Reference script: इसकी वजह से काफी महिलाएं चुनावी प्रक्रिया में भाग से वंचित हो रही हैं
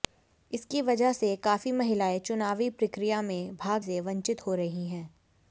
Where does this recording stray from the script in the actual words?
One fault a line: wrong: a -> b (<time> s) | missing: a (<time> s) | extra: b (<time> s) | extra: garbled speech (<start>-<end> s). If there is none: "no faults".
no faults